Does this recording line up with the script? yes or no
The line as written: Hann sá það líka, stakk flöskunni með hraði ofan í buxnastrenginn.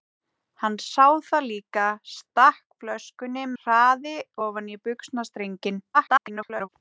no